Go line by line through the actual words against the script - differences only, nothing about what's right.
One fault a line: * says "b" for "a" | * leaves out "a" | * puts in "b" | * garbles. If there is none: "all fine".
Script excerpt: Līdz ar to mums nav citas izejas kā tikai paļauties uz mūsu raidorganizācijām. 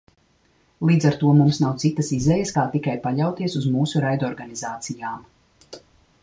all fine